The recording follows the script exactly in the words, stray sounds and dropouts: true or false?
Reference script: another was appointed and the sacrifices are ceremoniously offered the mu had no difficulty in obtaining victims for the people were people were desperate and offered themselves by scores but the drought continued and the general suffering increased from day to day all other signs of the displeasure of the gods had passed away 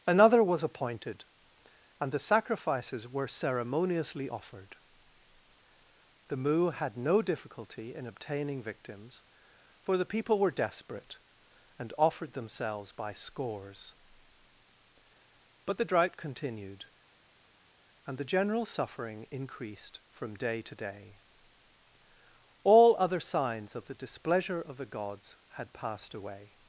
false